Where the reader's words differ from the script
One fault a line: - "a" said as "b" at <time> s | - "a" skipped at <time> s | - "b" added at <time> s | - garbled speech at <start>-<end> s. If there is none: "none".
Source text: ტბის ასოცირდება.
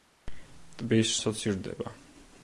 none